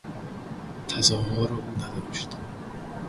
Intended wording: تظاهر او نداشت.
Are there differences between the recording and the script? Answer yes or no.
no